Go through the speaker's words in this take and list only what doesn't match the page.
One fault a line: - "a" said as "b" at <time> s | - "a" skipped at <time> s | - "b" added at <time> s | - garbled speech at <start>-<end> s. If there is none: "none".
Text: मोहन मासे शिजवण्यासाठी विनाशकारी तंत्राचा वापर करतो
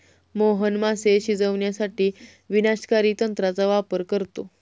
none